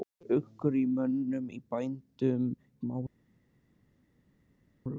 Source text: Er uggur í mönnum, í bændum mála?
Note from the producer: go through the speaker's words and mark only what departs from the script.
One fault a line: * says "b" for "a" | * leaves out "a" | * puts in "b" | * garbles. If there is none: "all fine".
all fine